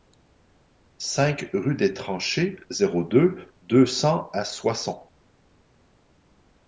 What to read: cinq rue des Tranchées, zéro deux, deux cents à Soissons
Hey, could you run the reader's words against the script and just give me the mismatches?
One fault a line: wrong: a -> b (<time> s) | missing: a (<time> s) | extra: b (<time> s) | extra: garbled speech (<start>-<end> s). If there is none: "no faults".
no faults